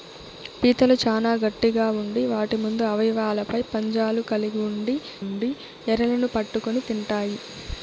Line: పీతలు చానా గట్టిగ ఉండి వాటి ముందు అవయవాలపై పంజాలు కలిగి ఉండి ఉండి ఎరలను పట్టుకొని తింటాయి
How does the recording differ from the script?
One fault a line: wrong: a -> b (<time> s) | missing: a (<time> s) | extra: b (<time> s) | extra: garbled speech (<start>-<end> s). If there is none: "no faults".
no faults